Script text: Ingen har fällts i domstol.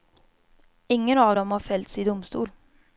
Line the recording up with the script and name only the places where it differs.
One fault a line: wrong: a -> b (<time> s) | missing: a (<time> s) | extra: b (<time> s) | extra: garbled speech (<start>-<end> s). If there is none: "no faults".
extra: av dem (1.2 s)